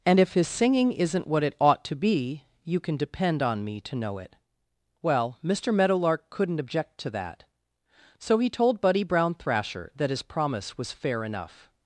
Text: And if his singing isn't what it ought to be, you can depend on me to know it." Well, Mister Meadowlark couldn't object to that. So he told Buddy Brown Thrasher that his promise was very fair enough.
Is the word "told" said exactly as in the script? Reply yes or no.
yes